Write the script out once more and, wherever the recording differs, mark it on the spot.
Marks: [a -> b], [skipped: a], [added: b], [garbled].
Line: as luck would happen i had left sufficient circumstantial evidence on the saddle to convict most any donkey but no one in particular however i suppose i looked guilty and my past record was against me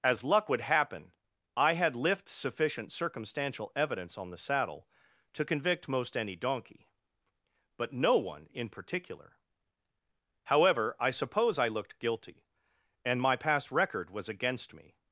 as luck would happen i had [left -> lift] sufficient circumstantial evidence on the saddle to convict most any donkey but no one in particular however i suppose i looked guilty and my past record was against me